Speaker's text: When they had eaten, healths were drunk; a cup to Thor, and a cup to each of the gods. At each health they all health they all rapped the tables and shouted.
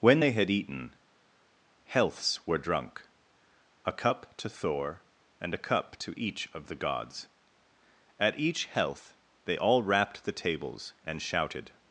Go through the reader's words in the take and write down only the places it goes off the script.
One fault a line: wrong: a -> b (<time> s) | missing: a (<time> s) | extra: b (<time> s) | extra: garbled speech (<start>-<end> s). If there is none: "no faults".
missing: health they all (9.8 s)